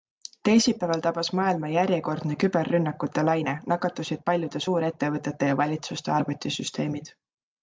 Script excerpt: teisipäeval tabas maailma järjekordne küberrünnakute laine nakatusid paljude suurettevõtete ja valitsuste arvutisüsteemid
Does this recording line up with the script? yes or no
yes